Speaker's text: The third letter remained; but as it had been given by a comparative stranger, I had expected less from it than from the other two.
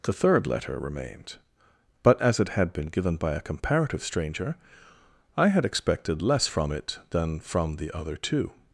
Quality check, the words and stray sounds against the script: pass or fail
pass